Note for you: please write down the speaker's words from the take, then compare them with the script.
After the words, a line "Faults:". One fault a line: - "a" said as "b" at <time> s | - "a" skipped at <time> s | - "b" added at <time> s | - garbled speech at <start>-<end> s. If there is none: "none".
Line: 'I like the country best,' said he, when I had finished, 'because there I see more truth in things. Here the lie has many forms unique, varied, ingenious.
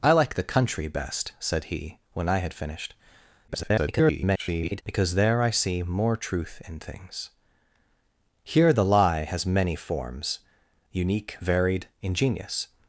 'I like the country best,' said he, when I had finished, [garbled] 'because there I see more truth in things. Here the lie has many forms unique, varied, ingenious.
Faults:
- garbled speech at 3.5-4.8 s